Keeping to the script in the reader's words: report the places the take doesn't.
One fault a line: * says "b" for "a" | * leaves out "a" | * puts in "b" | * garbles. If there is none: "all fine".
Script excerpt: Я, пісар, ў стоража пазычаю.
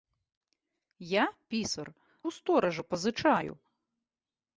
all fine